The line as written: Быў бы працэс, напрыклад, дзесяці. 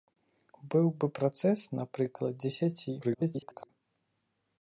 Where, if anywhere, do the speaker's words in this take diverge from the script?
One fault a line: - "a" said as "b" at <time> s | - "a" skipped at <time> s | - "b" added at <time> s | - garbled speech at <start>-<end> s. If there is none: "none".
- garbled speech at 3.0-3.7 s